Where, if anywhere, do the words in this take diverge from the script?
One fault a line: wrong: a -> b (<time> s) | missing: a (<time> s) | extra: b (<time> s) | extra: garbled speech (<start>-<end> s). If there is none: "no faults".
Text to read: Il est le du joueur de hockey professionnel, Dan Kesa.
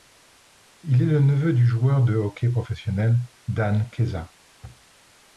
extra: neveu (1.2 s)